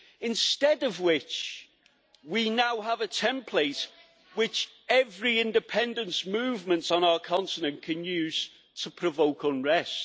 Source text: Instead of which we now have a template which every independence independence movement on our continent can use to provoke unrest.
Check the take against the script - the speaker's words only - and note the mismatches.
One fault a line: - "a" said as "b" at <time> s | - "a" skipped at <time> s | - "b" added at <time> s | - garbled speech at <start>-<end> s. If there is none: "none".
- "independence" skipped at 6.2 s